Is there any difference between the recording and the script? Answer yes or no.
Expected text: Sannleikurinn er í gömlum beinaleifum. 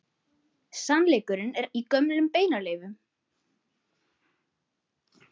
no